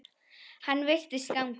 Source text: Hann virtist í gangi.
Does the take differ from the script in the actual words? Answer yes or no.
no